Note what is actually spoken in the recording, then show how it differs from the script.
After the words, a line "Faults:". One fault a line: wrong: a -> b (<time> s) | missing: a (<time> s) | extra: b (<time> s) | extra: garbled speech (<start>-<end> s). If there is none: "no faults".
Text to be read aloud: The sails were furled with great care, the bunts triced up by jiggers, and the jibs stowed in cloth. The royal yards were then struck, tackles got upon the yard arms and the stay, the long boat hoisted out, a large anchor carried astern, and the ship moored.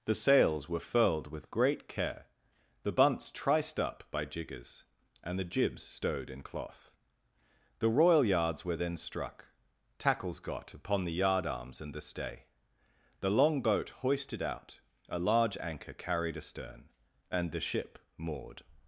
The sails were furled with great care, the bunts triced up by jiggers, and the jibs stowed in cloth. The royal yards were then struck, tackles got upon the yard arms and the stay, the long boat hoisted out, a large anchor carried astern, and the ship moored.
Faults:
no faults